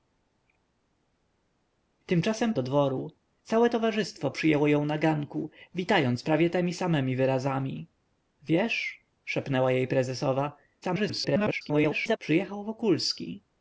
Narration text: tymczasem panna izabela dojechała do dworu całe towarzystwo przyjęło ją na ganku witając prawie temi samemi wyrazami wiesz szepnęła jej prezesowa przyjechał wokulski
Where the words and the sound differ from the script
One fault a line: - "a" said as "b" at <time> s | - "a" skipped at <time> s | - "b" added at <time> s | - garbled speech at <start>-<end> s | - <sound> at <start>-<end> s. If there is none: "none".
- "panna izabela dojechała" skipped at 2.5 s
- garbled speech at 10.8-12.2 s